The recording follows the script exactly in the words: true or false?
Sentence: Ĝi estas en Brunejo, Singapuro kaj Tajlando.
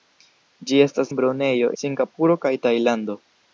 true